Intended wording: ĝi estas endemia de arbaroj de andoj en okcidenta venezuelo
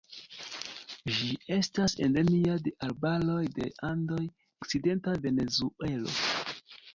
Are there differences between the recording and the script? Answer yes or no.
yes